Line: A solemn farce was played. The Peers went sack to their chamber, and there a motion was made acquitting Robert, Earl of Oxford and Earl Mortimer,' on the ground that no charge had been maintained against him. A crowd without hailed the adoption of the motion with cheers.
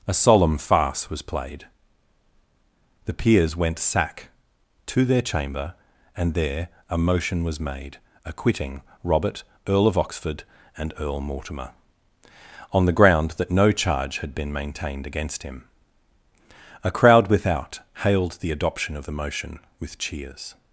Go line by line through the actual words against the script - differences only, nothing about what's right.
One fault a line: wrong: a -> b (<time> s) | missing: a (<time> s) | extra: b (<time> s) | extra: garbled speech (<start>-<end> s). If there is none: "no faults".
no faults